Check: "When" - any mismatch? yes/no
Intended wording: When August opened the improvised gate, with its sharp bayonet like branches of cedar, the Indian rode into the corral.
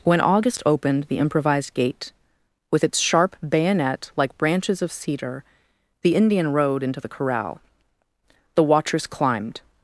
no